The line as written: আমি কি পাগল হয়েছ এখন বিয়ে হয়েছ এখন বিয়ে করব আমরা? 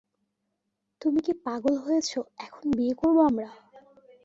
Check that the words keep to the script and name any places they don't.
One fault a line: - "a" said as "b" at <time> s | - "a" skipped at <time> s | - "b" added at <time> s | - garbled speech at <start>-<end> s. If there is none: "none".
- "আমি" said as "তুমি" at 1.0 s
- "হয়েছ এখন বিয়ে" skipped at 2.9 s